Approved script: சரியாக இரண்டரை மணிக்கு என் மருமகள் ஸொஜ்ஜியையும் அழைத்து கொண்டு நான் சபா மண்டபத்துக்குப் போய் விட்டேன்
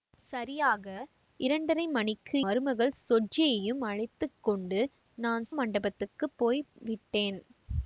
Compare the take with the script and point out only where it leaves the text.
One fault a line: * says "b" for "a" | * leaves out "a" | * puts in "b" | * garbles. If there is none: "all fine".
* leaves out "என்"
* leaves out "சபா"